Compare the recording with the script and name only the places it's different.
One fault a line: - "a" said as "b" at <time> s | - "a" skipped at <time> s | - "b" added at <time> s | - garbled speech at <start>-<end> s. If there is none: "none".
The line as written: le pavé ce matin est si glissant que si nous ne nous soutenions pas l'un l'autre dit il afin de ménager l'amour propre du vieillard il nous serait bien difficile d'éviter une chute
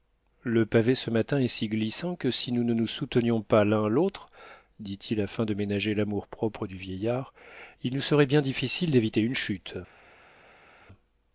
none